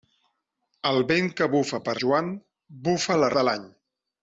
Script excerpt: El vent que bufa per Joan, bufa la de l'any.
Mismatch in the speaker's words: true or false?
false